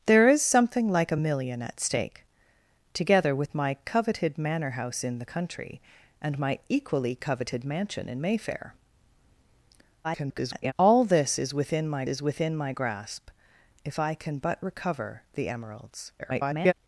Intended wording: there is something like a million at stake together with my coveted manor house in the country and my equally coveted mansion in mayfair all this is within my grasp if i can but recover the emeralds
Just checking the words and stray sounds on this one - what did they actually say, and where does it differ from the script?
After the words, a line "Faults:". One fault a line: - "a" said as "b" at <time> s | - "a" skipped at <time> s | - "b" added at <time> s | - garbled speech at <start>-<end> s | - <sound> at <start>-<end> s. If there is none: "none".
there is something like a million at stake together with my coveted manor house in the country and my equally coveted mansion in mayfair [garbled] all this is within my is within my grasp if i can but recover the emeralds [garbled]
Faults:
- garbled speech at 10.0-10.7 s
- "is within my" added at 12.1 s
- garbled speech at 16.2-16.7 s